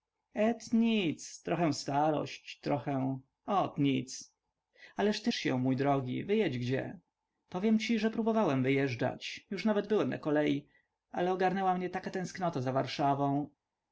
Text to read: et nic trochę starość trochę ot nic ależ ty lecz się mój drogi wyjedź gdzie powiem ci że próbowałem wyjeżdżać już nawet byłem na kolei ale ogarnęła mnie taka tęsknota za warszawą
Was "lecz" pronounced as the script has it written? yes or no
no